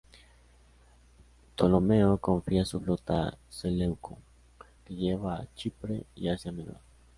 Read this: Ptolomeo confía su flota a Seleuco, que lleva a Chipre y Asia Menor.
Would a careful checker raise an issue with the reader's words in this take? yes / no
no